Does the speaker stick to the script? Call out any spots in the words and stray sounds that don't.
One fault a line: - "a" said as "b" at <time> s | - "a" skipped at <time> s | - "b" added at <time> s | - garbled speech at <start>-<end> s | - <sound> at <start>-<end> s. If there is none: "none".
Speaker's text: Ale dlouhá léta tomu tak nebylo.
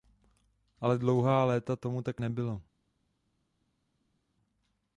none